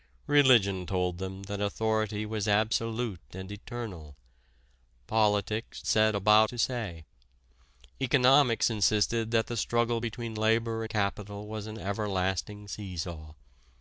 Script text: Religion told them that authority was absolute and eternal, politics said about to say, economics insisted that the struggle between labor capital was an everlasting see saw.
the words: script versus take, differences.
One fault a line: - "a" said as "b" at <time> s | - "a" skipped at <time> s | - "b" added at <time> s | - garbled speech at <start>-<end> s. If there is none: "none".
none